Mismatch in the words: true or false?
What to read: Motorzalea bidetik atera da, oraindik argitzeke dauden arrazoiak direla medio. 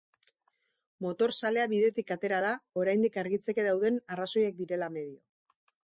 false